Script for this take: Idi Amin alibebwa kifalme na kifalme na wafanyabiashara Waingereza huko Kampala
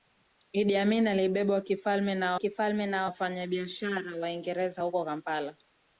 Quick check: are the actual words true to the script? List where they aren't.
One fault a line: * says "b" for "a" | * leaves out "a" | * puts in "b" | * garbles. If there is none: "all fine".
all fine